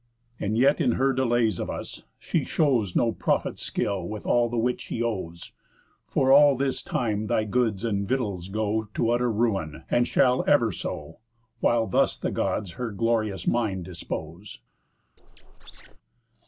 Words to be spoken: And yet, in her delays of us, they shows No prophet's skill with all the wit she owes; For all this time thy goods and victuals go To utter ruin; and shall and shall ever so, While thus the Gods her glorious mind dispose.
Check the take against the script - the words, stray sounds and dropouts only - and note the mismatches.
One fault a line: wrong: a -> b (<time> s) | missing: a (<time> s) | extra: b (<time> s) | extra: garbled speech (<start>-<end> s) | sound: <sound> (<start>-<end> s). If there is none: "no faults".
wrong: they -> she (2.2 s)
missing: and shall (10.4 s)
sound: squeak (15.2-16.0 s)